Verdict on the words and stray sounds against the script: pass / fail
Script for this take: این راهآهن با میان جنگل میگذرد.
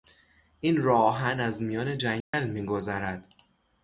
fail